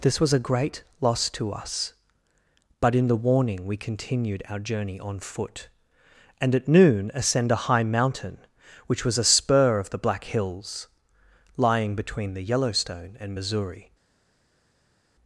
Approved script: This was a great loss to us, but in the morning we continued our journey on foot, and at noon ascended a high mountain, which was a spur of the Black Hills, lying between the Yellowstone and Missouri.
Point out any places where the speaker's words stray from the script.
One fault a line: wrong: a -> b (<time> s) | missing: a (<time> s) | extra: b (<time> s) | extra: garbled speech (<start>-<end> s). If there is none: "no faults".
wrong: morning -> warning (3.2 s)
wrong: ascended -> ascend (7.1 s)